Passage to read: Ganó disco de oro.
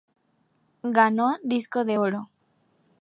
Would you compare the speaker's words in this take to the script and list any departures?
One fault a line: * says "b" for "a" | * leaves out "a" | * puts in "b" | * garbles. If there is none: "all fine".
all fine